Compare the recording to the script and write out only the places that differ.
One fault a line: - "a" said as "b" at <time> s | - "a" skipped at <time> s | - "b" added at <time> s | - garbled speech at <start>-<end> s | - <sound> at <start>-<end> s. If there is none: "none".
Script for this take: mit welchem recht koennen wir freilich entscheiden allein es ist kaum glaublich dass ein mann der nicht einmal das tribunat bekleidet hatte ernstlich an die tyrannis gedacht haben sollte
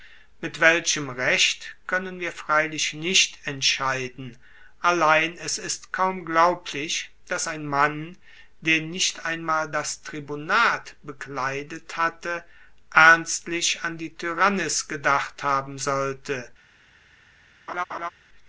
- "nicht" added at 2.9 s
- laugh at 17.7-18.1 s